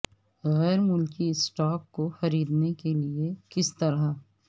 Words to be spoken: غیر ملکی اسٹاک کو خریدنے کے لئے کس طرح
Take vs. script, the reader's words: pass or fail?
pass